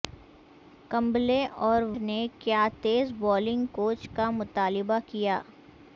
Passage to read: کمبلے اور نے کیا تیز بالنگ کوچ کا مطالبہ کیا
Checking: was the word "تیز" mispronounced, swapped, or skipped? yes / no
no